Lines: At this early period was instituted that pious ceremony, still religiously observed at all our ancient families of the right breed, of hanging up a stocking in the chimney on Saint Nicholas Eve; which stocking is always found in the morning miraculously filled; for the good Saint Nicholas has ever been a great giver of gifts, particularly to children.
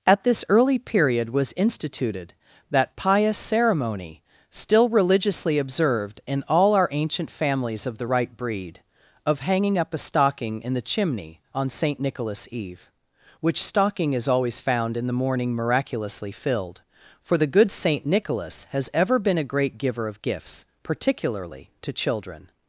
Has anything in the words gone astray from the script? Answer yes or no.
yes